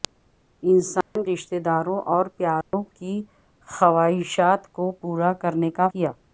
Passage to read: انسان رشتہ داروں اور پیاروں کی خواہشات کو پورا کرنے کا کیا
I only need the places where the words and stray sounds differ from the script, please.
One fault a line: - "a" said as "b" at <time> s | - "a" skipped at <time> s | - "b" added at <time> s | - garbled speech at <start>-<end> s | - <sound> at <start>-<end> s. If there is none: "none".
- dropout at 1.0-1.2 s
- dropout at 2.6-2.7 s